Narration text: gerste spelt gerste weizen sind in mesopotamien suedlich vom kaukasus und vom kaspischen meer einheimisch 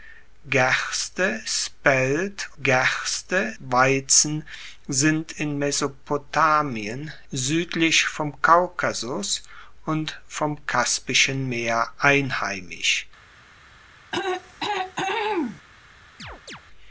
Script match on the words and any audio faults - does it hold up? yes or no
no